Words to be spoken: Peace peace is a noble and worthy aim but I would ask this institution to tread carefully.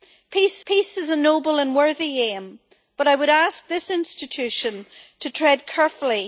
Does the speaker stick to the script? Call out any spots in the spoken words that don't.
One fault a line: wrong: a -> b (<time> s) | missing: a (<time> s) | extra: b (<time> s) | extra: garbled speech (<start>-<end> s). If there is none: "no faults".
no faults